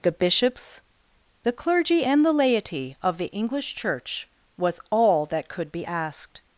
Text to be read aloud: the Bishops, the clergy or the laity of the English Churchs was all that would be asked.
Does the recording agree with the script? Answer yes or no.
no